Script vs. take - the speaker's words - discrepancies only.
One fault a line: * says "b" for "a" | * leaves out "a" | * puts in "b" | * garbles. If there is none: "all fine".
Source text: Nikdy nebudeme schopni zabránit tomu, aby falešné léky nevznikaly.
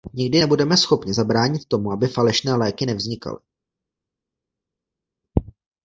all fine